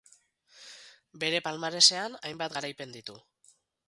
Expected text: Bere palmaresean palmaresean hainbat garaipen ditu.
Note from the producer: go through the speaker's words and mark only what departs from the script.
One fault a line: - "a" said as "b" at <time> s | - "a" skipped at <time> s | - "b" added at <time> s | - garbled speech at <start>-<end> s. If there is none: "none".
- "palmaresean" skipped at 2.2 s